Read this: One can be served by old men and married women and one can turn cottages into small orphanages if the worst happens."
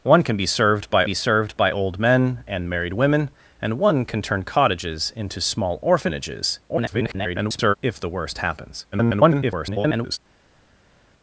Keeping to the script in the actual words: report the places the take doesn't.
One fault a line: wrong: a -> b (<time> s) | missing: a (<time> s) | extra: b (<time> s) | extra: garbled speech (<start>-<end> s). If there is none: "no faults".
extra: be served by (1.0 s)
extra: garbled speech (6.7-7.7 s)
extra: garbled speech (8.9-10.2 s)